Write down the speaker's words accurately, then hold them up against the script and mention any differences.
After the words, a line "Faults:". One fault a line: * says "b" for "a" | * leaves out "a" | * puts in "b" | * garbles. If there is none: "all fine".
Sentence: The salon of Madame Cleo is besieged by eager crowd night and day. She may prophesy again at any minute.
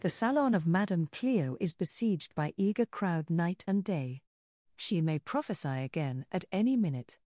The salon of Madame Cleo is besieged by eager crowd night and day. She may prophesy again at any minute.
Faults:
all fine